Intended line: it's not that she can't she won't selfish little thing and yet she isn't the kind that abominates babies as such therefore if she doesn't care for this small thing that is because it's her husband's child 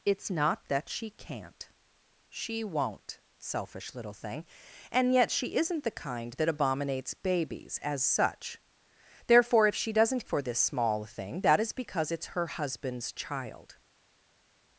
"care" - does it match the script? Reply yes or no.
no